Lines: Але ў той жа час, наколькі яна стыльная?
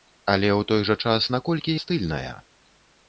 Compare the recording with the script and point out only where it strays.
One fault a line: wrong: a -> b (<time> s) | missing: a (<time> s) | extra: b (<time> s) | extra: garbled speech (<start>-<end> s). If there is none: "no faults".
missing: яна (1.7 s)